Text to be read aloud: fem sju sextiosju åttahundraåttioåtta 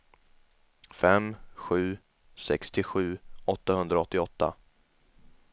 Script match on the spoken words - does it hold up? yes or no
yes